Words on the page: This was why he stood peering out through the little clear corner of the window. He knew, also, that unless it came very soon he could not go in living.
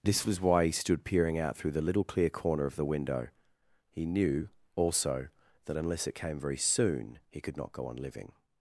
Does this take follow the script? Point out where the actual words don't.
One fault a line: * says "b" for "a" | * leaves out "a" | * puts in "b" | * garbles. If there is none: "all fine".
* says "on" for "in"